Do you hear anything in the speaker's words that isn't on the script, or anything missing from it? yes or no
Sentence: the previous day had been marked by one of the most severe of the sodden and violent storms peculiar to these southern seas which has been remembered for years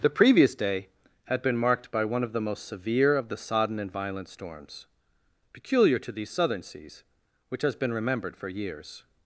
no